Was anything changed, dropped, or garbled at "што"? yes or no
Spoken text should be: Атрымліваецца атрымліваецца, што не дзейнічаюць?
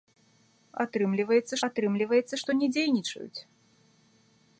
no